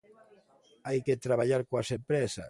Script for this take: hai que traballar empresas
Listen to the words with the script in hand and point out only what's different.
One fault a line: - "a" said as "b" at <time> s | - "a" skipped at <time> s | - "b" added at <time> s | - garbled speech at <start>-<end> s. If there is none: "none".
- "coas" added at 1.7 s